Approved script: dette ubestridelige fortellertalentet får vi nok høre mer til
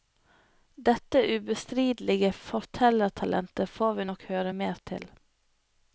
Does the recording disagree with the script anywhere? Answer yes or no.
no